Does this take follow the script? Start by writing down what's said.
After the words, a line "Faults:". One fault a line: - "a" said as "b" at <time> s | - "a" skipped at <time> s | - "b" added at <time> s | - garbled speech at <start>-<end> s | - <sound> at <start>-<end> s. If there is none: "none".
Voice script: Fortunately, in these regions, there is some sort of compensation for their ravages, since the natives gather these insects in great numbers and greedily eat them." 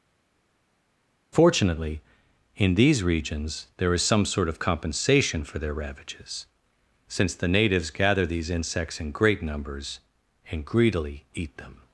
Fortunately, in these regions, there is some sort of compensation for their ravages, since the natives gather these insects in great numbers and greedily eat them."
Faults:
none